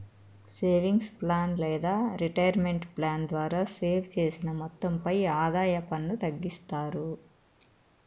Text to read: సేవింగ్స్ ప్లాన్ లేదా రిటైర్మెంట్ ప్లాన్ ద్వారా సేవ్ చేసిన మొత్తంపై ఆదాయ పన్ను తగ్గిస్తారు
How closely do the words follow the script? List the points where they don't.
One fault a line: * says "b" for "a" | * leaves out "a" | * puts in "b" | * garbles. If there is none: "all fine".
all fine